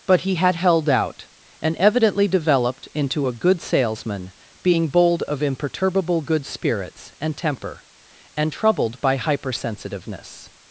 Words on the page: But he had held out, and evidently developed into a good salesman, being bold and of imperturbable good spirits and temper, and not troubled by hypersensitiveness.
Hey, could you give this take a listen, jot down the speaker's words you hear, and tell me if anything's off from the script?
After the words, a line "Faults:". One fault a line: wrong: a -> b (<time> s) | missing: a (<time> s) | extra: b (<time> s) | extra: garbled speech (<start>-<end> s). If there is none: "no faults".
But he had held out, and evidently developed into a good salesman, being bold of imperturbable good spirits and temper, and troubled by hypersensitiveness.
Faults:
missing: and (5.2 s)
missing: not (8.5 s)